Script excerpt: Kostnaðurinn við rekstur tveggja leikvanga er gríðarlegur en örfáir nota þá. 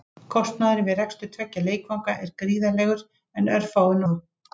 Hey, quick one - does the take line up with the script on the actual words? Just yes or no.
no